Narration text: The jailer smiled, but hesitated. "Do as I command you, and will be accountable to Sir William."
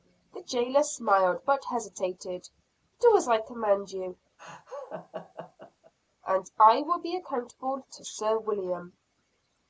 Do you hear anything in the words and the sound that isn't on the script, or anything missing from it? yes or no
yes